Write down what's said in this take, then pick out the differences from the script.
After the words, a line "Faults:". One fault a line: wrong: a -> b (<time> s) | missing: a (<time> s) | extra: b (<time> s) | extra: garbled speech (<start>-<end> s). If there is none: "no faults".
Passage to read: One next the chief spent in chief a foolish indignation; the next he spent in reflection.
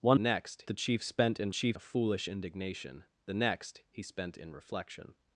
One next the chief spent in chief a foolish indignation; the next he spent in reflection.
Faults:
no faults